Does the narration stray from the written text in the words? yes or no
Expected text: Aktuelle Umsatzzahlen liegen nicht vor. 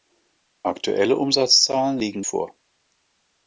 yes